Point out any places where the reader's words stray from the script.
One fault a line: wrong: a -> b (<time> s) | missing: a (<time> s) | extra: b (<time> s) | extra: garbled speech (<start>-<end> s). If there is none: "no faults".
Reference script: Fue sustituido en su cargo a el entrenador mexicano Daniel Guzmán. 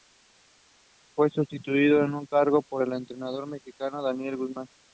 wrong: a -> por (2.6 s)